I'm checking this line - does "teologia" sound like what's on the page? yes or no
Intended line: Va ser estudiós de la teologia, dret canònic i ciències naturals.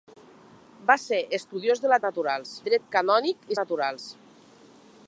no